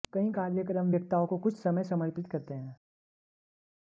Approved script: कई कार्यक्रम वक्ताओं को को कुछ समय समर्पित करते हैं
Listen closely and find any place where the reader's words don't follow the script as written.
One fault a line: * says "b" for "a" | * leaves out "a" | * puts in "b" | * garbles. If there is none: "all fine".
* leaves out "को"